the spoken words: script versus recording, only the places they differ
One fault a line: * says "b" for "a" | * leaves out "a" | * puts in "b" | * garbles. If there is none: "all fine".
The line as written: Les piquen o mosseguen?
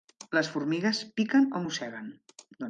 * puts in "formigues"